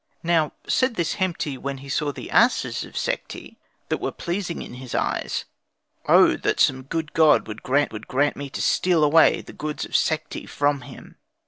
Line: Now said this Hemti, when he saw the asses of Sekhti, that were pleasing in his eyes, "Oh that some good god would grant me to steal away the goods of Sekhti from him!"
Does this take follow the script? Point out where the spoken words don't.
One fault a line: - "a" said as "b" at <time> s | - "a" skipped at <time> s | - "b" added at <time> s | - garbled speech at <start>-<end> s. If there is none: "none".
- "would grant" added at 7.9 s